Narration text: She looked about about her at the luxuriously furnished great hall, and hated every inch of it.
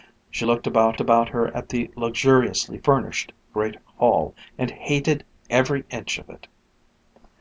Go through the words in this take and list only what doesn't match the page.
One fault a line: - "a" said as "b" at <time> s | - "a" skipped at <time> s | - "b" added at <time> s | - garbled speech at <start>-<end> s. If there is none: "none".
none